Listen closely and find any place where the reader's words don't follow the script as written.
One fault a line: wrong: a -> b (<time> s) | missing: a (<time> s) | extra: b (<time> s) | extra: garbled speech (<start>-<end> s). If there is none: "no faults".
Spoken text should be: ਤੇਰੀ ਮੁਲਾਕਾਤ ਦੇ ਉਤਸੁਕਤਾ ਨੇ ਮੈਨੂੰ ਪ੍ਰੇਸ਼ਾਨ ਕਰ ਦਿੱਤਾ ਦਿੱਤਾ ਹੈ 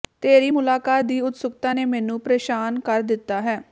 wrong: ਦੇ -> ਦੀ (1.0 s)
missing: ਦਿੱਤਾ (3.4 s)